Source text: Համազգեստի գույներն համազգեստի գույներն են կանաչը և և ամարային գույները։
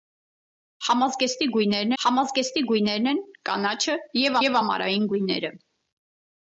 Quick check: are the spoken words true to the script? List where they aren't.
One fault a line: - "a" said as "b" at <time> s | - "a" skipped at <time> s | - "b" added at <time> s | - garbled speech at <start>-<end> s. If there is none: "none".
none